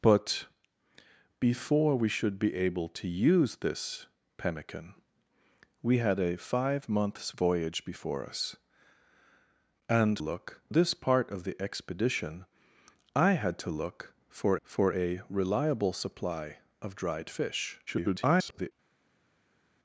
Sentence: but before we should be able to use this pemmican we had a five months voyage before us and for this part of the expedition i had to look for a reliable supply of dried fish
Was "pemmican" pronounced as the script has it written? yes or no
yes